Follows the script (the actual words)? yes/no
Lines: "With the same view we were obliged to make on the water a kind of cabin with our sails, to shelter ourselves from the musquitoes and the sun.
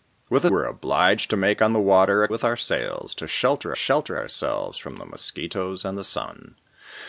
no